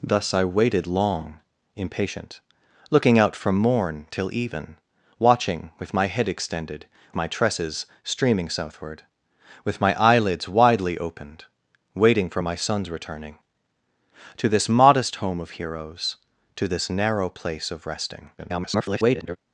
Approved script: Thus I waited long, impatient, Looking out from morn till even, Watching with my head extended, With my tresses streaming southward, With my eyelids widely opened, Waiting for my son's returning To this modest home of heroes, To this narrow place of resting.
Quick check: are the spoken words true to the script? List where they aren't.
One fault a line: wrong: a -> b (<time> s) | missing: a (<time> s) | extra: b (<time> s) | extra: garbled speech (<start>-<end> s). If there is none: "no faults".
missing: With (6.9 s)
extra: garbled speech (18.4-19.4 s)